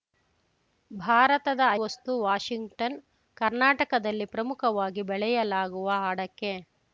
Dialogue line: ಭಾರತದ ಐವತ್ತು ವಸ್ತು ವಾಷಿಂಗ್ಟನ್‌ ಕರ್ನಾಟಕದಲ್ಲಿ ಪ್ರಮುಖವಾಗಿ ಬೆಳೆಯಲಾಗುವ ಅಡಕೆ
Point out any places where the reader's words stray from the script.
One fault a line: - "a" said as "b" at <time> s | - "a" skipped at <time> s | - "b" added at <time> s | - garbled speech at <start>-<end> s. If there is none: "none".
- "ಐವತ್ತು" skipped at 1.6 s